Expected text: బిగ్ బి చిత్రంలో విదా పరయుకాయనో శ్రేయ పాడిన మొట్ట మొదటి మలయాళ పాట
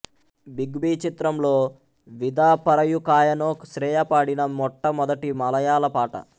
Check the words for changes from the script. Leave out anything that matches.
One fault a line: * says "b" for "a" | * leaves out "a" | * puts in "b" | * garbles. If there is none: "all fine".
all fine